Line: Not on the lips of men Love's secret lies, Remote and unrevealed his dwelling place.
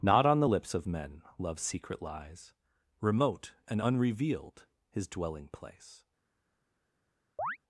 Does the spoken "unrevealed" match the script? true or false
true